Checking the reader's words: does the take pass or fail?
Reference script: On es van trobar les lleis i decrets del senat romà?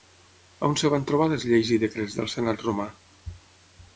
pass